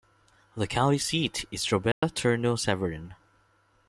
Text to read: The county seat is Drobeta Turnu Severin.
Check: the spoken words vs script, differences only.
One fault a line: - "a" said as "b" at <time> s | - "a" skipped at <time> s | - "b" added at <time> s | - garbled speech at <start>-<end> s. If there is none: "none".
none